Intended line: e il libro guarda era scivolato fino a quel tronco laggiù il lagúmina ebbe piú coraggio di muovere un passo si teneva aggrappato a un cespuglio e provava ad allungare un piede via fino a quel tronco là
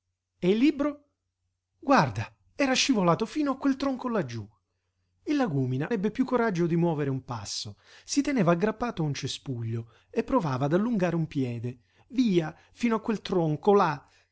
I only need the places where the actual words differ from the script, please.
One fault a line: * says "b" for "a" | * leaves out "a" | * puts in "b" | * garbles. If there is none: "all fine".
all fine